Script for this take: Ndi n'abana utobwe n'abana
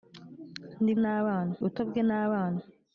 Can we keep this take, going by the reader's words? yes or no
yes